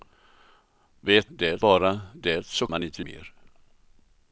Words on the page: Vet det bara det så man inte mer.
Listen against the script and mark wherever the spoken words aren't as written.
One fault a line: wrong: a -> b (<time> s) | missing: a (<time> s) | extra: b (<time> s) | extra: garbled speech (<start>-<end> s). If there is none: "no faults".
no faults